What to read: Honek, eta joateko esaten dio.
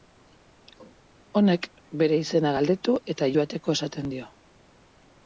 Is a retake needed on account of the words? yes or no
yes